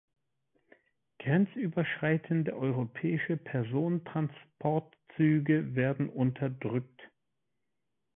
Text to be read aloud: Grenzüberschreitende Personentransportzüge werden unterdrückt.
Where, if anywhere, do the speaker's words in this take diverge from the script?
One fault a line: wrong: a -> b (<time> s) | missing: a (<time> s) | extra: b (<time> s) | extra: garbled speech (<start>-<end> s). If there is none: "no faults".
extra: europäische (2.5 s)